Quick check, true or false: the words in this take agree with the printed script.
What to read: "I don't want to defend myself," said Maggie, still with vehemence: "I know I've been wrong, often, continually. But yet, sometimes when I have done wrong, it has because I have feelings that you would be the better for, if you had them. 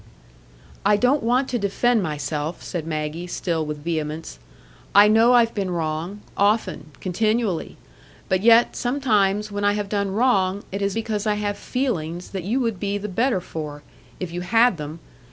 true